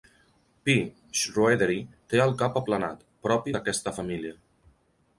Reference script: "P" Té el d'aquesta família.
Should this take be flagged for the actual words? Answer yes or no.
yes